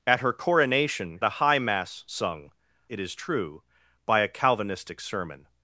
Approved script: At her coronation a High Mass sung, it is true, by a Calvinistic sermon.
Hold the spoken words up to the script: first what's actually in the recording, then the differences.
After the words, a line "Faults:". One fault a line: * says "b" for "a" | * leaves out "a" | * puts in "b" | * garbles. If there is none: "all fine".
At her coronation a High Mass sung, it is true, by a Calvinistic sermon.
Faults:
all fine